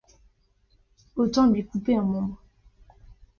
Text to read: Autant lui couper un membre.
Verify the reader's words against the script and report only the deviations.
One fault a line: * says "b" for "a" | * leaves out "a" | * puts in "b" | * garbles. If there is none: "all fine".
all fine